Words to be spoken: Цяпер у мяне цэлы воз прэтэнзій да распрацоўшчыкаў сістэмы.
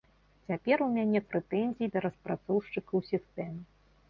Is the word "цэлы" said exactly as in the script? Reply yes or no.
no